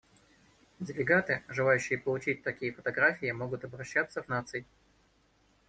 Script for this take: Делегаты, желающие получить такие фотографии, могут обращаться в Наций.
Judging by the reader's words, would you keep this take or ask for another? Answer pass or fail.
pass